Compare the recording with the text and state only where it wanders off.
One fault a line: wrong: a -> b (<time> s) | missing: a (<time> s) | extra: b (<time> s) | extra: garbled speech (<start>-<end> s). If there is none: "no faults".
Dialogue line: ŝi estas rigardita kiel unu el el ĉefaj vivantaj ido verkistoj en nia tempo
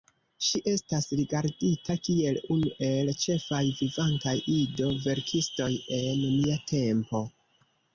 missing: el (3.1 s)